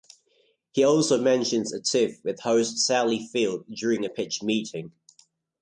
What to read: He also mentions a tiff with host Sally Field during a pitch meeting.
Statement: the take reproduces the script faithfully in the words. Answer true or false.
true